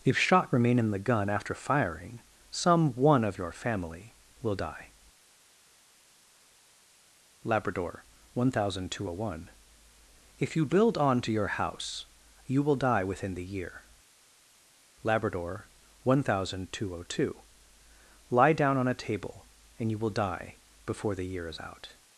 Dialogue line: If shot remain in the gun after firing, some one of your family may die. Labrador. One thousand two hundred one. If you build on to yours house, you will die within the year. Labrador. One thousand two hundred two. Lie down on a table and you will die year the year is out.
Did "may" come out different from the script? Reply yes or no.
yes